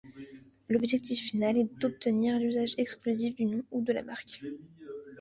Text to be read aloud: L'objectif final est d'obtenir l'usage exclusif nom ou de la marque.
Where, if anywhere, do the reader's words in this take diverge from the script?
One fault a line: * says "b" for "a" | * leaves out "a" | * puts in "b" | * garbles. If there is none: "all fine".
* puts in "du"